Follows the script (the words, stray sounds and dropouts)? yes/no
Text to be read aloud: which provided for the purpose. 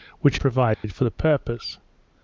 no